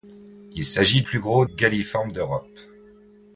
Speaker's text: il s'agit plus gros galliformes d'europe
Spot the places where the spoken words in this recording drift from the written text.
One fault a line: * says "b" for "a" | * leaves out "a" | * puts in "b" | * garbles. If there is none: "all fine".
all fine